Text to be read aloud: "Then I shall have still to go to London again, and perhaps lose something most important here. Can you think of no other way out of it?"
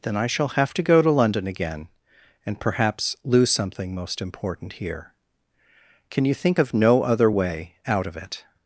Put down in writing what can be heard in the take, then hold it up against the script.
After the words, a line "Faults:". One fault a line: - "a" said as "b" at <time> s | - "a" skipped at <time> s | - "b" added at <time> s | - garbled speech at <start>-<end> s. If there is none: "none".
"Then I shall have to go to London again, and perhaps lose something most important here. Can you think of no other way out of it?"
Faults:
- "still" skipped at 0.7 s